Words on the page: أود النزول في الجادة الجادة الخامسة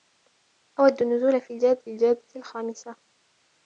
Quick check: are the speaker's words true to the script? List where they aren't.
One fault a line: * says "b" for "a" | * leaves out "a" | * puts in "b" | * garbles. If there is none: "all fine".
all fine